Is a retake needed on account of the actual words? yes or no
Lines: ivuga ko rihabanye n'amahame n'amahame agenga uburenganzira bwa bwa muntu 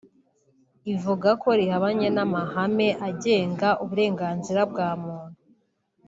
yes